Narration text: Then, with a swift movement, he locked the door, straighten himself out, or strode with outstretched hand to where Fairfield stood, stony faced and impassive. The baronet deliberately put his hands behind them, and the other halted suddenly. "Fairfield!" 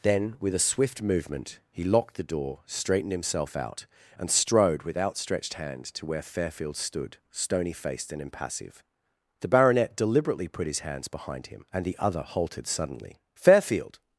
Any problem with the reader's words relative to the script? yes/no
yes